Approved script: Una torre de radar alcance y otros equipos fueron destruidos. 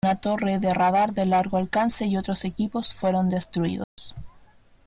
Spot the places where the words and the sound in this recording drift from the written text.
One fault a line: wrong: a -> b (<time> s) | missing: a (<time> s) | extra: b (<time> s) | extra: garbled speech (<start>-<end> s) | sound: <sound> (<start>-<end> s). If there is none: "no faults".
extra: de largo (1.1 s)
sound: dropout (3.8-4.0 s)